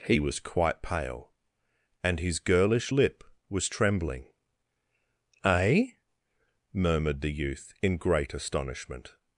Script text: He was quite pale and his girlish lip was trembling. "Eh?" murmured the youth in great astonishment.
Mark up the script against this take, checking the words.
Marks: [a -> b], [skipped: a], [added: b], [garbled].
He was quite pale and his girlish lip was trembling. "Eh?" murmured the youth in great astonishment.